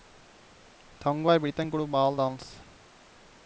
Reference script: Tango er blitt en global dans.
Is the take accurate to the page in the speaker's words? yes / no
yes